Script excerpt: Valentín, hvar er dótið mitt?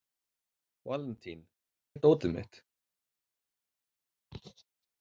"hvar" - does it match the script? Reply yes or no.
no